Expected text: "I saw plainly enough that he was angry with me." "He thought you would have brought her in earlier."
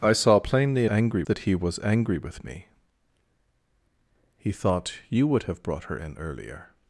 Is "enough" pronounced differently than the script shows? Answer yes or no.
yes